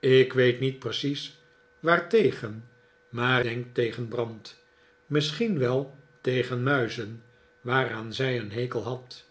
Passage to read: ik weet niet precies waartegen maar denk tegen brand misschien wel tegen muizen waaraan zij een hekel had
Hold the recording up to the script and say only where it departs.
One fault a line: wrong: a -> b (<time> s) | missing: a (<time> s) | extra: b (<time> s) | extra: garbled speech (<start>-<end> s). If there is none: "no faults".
no faults